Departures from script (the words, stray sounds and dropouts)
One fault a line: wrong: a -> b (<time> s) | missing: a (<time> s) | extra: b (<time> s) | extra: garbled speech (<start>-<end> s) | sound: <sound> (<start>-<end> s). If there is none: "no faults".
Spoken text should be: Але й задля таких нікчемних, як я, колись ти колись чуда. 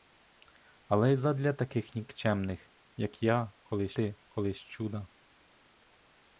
no faults